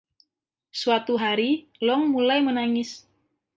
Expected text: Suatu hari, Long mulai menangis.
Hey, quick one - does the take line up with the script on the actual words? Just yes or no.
yes